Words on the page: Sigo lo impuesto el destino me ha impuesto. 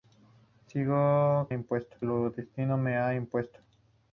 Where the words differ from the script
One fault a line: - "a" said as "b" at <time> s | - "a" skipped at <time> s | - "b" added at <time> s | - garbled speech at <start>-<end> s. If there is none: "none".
none